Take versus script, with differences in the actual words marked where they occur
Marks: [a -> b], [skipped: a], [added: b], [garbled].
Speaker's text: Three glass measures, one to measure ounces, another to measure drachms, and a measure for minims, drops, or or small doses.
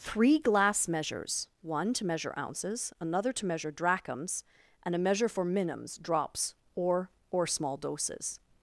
Three glass measures, one to measure ounces, another to measure drachms, and a measure for minims, drops, or or small doses.